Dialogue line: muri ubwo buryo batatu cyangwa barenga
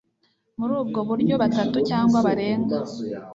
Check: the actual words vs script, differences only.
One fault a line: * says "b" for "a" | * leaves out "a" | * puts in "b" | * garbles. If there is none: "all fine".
all fine